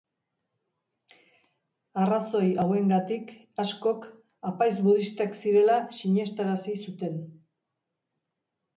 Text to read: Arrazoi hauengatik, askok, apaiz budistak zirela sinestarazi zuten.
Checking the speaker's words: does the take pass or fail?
pass